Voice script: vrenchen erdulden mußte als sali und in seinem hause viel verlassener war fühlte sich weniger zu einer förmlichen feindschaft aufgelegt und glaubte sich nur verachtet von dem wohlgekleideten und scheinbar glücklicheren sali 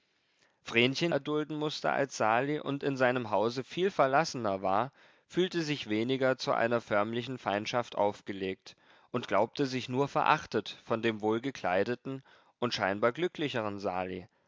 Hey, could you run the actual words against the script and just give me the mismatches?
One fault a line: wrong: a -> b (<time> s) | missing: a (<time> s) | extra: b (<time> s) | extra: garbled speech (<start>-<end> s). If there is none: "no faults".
no faults